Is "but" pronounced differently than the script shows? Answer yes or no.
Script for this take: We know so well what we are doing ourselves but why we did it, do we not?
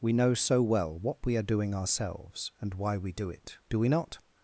yes